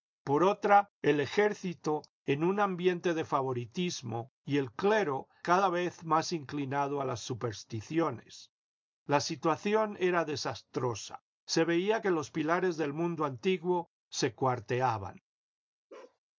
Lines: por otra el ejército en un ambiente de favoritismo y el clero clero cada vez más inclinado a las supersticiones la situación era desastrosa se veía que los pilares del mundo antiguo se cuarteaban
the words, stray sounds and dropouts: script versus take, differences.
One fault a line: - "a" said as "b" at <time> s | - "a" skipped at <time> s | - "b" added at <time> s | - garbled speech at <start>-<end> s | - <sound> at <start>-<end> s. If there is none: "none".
- "clero" skipped at 5.3 s
- bark at 15.9-16.2 s